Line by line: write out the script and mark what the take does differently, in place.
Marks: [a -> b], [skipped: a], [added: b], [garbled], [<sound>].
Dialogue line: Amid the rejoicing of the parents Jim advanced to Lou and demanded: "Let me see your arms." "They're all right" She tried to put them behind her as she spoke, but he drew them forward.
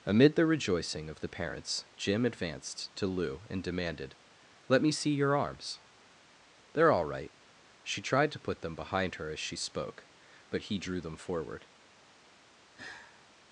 Amid the rejoicing of the parents Jim advanced to Lou and demanded: "Let me see your arms." "They're all right" She tried to put them behind her as she spoke, but he drew them forward. [sigh]